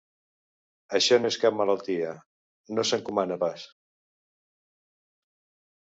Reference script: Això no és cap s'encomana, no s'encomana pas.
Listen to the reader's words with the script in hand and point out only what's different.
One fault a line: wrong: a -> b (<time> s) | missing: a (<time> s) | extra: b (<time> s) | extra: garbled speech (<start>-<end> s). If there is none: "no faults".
wrong: s'encomana -> malaltia (1.6 s)